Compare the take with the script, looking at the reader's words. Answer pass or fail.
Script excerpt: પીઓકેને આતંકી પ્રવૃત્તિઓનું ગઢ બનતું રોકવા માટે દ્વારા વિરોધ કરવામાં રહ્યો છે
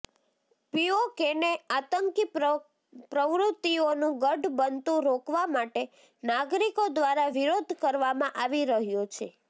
fail